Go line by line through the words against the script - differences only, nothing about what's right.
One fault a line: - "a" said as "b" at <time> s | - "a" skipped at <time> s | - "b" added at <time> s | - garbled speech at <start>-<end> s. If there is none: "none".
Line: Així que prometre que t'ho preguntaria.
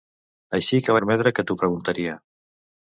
none